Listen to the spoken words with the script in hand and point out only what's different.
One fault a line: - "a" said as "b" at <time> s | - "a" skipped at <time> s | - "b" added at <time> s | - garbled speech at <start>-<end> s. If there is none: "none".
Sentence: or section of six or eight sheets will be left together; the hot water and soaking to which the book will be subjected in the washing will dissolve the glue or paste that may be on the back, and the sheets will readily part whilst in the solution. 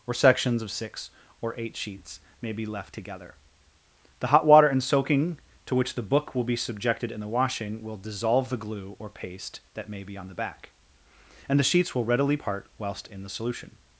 - "section" said as "sections" at 0.1 s
- "will" said as "may" at 2.4 s